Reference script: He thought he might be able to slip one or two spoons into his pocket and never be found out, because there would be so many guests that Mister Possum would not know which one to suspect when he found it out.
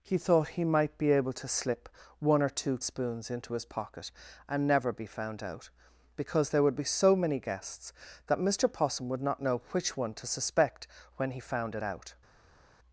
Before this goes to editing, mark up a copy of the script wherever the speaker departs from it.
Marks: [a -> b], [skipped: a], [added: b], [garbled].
He thought he might be able to slip one or two spoons into his pocket and never be found out, because there would be so many guests that Mister Possum would not know which one to suspect when he found it out.